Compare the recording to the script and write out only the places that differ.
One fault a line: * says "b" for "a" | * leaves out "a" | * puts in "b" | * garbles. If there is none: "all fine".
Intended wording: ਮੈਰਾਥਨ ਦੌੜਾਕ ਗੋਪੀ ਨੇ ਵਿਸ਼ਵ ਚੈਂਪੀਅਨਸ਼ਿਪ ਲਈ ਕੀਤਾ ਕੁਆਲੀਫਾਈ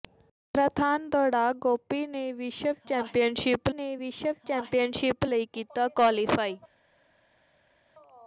* puts in "ਨੇ ਵਿਸ਼ਵ ਚੈਂਪੀਅਨਸ਼ਿਪ"